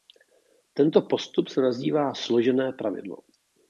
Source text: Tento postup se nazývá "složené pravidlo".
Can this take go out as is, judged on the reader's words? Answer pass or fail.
pass